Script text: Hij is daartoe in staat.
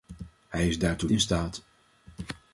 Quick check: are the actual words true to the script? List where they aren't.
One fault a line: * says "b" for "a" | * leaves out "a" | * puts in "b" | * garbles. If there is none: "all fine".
all fine